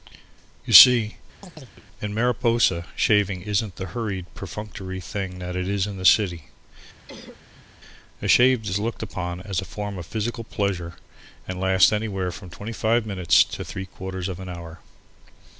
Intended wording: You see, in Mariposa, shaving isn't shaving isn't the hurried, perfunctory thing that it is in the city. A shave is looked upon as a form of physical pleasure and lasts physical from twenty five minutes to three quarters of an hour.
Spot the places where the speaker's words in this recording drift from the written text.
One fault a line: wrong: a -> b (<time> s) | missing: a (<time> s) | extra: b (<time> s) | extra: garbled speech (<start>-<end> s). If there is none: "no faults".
missing: shaving isn't (3.8 s)
wrong: physical -> anywhere (11.9 s)